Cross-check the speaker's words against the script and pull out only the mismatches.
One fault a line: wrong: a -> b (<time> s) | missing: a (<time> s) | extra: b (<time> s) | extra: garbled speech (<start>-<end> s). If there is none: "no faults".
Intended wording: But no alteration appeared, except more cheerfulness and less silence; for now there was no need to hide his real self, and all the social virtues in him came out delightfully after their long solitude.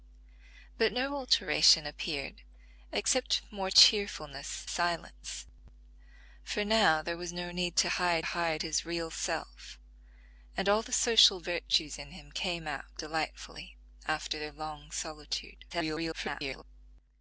missing: and less (4.7 s)
extra: hide (8.2 s)
extra: garbled speech (15.7-16.6 s)